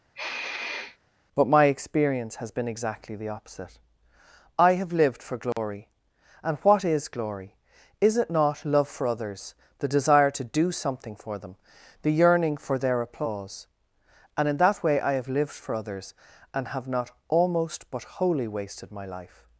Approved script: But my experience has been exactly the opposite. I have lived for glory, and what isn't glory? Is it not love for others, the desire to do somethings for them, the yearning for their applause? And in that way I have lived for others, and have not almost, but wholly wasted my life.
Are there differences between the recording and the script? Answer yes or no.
yes